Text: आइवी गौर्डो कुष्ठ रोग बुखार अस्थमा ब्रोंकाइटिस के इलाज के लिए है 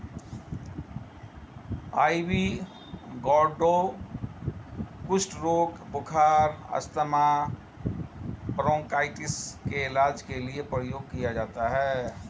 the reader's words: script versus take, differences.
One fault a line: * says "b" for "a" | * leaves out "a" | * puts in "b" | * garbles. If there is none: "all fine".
* puts in "प्रयोग किया जाता"